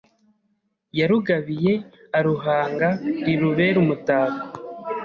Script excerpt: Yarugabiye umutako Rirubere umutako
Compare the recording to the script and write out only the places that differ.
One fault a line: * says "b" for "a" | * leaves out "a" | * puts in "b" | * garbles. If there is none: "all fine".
* says "aruhanga" for "umutako"